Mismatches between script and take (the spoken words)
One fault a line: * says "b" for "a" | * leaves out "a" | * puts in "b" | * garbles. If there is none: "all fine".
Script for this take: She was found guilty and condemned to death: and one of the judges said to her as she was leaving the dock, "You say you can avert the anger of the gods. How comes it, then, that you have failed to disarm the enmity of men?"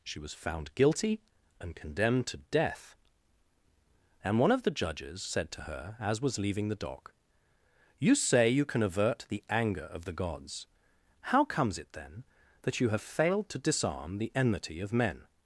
* leaves out "she"